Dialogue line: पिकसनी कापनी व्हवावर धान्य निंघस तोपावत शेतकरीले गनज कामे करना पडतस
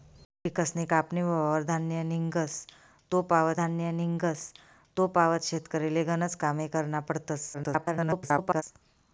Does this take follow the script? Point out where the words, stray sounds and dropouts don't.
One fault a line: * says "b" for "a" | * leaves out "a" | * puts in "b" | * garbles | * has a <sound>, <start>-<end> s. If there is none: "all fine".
* puts in "धान्य निंघस तोपावत"
* garbles